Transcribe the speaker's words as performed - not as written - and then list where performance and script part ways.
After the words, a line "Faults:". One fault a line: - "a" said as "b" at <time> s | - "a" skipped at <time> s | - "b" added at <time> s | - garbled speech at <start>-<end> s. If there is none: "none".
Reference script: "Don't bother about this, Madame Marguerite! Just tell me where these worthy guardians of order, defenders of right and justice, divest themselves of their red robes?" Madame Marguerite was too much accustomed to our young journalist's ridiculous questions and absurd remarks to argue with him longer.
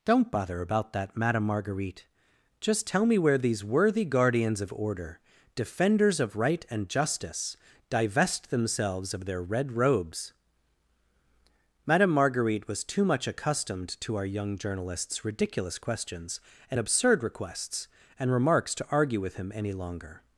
"Don't bother about that, Madame Marguerite! Just tell me where these worthy guardians of order, defenders of right and justice, divest themselves of their red robes?" Madame Marguerite was too much accustomed to our young journalist's ridiculous questions and absurd requests and remarks to argue with him any longer.
Faults:
- "this" said as "that" at 0.9 s
- "requests and" added at 17.2 s
- "any" added at 19.5 s